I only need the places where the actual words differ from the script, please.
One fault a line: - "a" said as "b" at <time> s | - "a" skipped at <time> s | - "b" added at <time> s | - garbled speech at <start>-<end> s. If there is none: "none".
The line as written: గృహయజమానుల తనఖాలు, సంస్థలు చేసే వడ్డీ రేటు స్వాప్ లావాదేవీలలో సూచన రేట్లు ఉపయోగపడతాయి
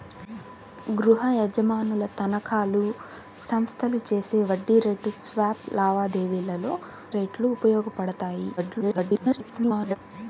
- "సూచన" skipped at 6.7 s
- garbled speech at 8.6-10.0 s